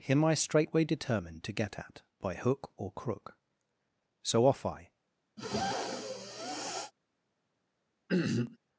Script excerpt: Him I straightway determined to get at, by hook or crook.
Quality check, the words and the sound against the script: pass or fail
fail